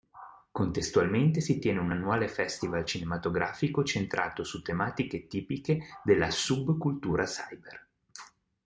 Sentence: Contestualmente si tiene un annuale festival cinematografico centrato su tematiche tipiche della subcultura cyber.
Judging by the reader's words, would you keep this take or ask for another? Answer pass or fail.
pass